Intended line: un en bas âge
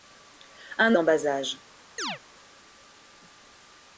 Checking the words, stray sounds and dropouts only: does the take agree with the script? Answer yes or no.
no